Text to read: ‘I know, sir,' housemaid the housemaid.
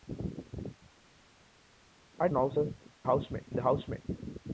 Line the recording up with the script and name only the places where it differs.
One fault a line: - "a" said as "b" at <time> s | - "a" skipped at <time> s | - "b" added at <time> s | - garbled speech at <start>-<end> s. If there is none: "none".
none